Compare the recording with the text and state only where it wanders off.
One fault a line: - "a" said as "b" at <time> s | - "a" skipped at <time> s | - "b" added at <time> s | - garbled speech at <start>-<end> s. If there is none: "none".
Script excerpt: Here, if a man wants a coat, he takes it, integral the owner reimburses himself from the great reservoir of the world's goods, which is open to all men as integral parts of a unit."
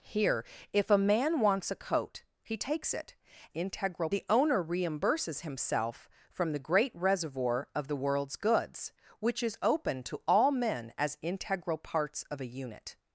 none